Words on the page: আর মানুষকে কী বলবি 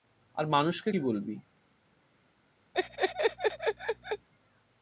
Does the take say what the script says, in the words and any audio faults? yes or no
no